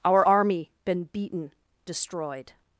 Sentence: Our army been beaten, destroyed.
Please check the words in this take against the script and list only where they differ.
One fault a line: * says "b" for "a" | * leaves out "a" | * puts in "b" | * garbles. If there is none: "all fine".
all fine